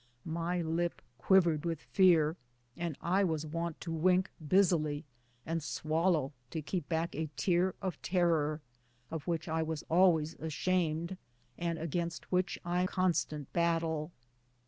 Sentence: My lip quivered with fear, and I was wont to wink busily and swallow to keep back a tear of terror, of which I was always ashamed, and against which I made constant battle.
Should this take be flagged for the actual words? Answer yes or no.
yes